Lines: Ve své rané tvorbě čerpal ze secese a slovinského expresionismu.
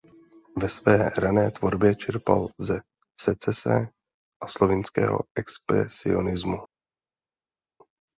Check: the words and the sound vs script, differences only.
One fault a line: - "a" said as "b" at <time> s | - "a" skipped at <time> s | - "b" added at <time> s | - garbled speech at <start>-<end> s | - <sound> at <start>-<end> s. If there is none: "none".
none